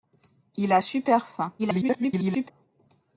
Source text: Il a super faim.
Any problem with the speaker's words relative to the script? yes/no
yes